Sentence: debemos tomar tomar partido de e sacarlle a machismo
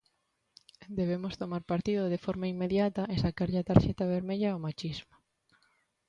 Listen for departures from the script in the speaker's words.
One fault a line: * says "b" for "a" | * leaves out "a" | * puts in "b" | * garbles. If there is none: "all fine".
* leaves out "tomar"
* puts in "forma inmediata"
* puts in "tarxeta vermella ao"